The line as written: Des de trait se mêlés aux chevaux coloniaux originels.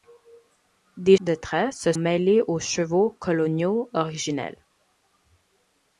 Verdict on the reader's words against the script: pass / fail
pass